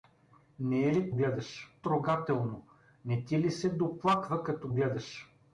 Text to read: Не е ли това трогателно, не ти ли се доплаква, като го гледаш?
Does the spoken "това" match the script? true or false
false